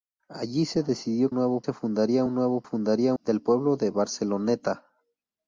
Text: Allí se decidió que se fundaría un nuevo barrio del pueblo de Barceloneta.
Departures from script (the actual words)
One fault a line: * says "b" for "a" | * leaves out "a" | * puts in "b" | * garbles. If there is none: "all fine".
* says "nuevo" for "que"
* says "fundaría" for "barrio"